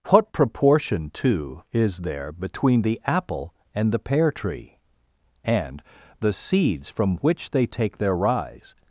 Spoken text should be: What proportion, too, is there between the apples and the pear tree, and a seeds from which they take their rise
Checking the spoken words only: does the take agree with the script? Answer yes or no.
no